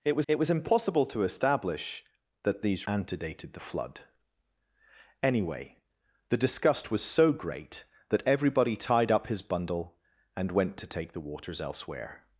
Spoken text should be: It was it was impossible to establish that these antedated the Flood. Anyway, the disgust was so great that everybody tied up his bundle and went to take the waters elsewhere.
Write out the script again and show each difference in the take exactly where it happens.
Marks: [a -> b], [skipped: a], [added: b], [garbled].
It was it was impossible to establish that these antedated the Flood. Anyway, the disgust was so great that everybody tied up his bundle and went to take the waters elsewhere.